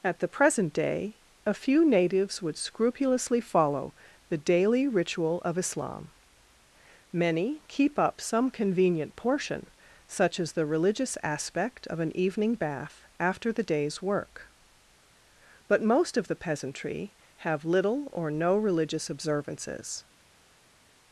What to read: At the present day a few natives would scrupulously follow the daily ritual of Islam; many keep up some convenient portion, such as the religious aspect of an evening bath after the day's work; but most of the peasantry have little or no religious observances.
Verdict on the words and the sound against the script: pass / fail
pass